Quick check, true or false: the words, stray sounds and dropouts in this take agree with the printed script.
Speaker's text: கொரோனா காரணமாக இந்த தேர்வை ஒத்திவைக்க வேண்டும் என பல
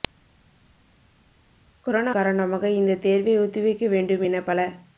true